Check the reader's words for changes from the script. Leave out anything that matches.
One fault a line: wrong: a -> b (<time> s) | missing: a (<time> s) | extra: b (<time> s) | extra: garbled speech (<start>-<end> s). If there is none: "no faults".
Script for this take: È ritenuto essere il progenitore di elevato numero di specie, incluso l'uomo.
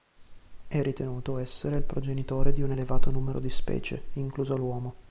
extra: un (2.6 s)